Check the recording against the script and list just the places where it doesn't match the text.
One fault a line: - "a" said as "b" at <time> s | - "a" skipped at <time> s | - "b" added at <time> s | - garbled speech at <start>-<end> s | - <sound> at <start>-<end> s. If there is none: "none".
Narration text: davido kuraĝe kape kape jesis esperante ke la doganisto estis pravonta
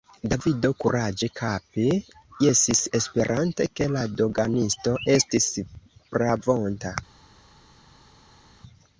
- "kape" skipped at 1.8 s